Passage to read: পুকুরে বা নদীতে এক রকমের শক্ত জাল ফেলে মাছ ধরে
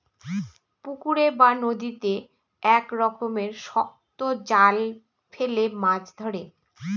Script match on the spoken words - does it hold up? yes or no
yes